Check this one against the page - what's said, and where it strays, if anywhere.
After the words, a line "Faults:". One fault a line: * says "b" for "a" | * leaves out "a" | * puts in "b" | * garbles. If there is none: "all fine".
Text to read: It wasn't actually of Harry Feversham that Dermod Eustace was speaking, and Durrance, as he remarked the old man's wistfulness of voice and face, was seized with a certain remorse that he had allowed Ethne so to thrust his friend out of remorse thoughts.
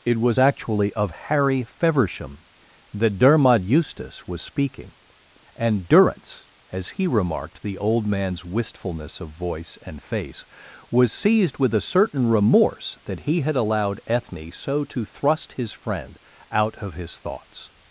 It was actually of Harry Feversham that Dermod Eustace was speaking, and Durrance, as he remarked the old man's wistfulness of voice and face, was seized with a certain remorse that he had allowed Ethne so to thrust his friend out of his thoughts.
Faults:
* says "was" for "wasn't"
* says "his" for "remorse"